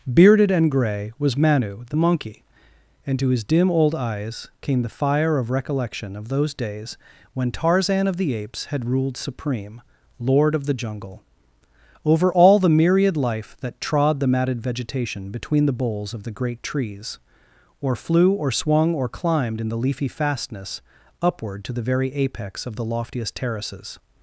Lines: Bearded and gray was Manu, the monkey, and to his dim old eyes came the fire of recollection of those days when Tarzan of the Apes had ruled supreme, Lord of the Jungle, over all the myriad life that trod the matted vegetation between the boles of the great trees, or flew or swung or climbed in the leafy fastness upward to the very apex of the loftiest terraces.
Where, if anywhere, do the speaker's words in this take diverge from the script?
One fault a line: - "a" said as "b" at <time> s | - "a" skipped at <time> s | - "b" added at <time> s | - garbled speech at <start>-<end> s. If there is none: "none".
none